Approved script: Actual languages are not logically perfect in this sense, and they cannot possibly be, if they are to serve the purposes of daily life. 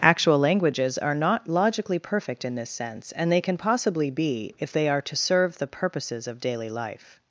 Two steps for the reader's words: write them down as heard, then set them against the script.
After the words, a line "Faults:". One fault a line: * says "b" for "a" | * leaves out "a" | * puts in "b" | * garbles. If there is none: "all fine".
Actual languages are not logically perfect in this sense, and they can possibly be, if they are to serve the purposes of daily life.
Faults:
* says "can" for "cannot"